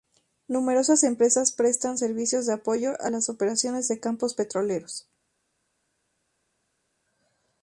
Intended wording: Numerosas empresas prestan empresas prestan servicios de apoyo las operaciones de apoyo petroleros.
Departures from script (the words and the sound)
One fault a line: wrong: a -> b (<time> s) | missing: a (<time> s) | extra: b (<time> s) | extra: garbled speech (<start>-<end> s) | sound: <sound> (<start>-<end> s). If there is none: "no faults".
missing: empresas prestan (2.0 s)
extra: a (3.0 s)
wrong: apoyo -> campos (4.0 s)